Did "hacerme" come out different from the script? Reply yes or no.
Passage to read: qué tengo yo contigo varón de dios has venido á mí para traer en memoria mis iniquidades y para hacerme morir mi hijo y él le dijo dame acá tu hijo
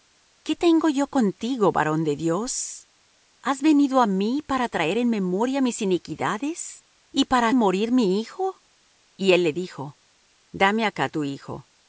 yes